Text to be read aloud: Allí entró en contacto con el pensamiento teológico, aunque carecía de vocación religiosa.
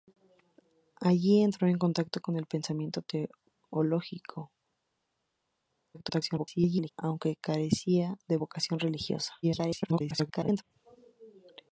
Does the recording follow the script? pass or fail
fail